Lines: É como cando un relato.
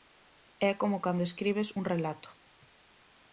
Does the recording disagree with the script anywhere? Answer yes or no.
yes